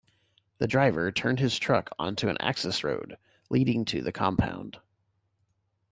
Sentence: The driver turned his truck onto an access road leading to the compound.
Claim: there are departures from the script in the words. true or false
false